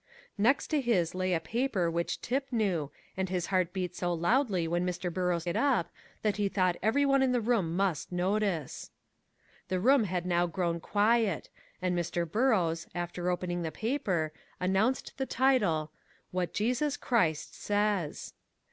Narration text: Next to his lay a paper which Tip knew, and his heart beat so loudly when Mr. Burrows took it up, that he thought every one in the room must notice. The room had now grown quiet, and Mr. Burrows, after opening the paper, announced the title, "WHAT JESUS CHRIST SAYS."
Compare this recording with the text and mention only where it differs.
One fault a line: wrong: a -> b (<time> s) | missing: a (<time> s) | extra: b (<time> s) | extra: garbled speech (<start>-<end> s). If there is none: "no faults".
missing: took (5.5 s)